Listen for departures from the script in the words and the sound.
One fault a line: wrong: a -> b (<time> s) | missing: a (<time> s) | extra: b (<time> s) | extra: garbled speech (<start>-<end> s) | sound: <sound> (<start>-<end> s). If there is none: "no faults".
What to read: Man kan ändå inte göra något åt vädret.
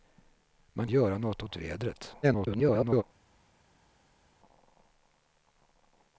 missing: kan ändå inte (0.9 s)
extra: garbled speech (2.2-3.0 s)